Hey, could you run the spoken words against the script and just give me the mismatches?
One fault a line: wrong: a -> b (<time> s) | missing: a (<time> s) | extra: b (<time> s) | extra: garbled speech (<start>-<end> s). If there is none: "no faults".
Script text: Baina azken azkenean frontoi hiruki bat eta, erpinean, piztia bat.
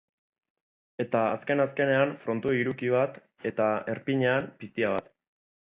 wrong: Baina -> Eta (1.0 s)